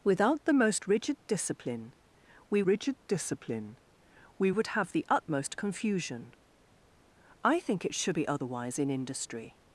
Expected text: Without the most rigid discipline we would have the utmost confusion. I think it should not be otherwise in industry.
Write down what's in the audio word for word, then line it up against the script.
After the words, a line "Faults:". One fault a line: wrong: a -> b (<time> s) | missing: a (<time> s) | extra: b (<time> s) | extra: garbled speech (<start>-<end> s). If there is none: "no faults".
Without the most rigid discipline we rigid discipline we would have the utmost confusion. I think it should be otherwise in industry.
Faults:
extra: rigid discipline we (2.6 s)
missing: not (8.2 s)